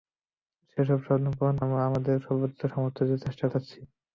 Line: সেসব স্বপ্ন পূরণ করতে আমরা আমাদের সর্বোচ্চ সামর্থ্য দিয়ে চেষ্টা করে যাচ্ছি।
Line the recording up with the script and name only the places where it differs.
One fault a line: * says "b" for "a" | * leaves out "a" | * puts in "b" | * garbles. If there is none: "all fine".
* leaves out "করতে"
* leaves out "করে"